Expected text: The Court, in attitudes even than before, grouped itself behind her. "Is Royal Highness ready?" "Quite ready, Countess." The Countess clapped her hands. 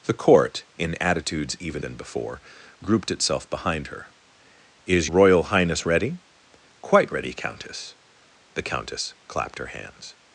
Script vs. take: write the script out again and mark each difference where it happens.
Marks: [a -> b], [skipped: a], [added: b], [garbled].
The Court, in attitudes even than before, grouped itself behind her. "Is Royal Highness ready?" "Quite ready, Countess." The Countess clapped her hands.